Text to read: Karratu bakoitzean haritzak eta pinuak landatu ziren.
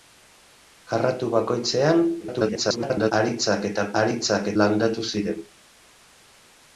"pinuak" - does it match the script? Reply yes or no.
no